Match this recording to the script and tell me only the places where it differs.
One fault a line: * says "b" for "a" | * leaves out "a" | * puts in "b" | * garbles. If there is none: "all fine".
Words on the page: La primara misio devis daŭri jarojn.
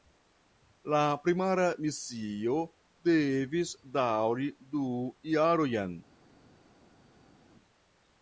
* puts in "du"